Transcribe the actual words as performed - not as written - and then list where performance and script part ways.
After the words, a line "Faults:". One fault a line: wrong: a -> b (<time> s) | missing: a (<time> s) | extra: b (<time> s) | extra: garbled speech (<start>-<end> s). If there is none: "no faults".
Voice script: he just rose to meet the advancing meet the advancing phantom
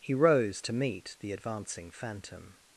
he rose to meet the advancing phantom
Faults:
missing: just (0.1 s)
missing: meet the advancing (1.9 s)